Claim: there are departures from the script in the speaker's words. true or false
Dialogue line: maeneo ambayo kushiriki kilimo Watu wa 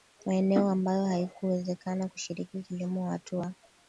true